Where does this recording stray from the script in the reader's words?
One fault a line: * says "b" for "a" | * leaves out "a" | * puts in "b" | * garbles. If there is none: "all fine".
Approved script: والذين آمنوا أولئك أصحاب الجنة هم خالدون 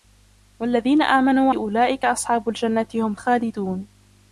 all fine